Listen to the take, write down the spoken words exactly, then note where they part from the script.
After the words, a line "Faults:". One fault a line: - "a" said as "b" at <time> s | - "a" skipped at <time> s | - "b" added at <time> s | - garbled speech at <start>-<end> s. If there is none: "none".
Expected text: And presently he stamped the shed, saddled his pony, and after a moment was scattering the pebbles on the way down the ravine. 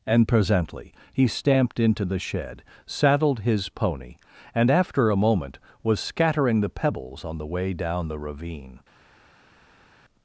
And presently he stamped into the shed, saddled his pony, and after a moment was scattering the pebbles on the way down the ravine.
Faults:
- "into" added at 1.8 s